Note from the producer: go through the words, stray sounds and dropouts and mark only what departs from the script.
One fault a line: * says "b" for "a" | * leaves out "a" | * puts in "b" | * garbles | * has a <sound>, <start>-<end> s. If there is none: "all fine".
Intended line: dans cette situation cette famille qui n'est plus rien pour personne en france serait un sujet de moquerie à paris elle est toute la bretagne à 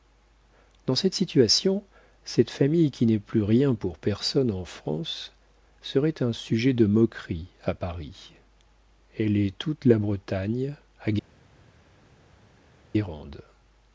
all fine